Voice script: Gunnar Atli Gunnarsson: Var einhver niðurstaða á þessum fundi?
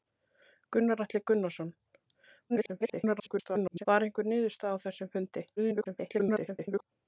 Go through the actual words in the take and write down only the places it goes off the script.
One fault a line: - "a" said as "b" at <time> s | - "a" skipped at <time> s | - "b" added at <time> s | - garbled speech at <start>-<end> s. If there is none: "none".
- garbled speech at 2.5-3.9 s
- garbled speech at 5.6-6.8 s